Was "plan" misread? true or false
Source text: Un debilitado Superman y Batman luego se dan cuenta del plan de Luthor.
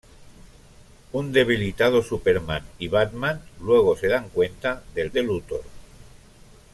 true